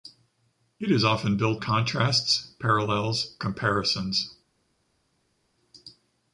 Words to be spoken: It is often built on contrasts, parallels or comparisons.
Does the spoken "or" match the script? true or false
false